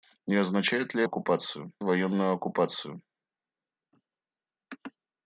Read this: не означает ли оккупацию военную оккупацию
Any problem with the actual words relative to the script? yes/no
no